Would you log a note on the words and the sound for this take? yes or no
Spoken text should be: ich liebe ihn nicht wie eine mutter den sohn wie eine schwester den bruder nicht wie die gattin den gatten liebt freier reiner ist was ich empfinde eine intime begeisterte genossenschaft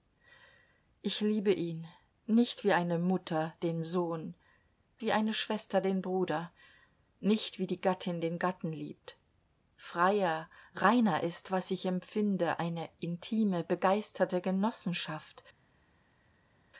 no